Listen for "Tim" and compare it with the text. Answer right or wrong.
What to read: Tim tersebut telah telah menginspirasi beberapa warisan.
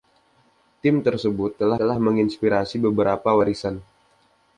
right